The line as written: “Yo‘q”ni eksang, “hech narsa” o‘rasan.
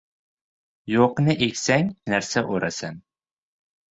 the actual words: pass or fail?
fail